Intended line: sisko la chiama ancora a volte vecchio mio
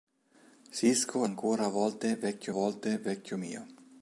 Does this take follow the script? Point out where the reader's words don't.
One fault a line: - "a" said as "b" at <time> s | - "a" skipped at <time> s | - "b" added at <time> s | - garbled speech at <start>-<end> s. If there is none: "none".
- "la chiama ancora a" said as "ancora a volte vecchio" at 1.2 s